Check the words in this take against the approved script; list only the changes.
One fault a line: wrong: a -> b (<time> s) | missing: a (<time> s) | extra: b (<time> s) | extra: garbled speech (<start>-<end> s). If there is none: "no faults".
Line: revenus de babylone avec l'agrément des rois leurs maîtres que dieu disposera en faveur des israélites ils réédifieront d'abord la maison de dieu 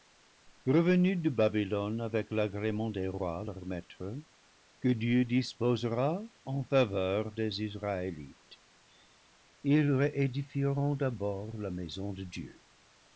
no faults